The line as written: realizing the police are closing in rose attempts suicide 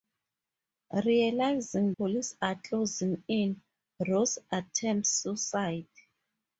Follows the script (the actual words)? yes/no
no